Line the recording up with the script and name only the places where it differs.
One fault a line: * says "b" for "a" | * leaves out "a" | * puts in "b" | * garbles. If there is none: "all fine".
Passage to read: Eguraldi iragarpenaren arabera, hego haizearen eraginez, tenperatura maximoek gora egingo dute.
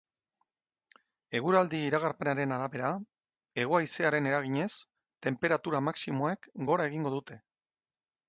all fine